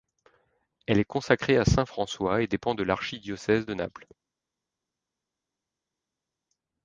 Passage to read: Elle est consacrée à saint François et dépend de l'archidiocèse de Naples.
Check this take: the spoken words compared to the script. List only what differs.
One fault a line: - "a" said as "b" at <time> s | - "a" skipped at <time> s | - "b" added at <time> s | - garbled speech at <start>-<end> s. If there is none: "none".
none